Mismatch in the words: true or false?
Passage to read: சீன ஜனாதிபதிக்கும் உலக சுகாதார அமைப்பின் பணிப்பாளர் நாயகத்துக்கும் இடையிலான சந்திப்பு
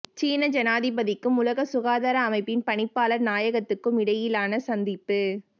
false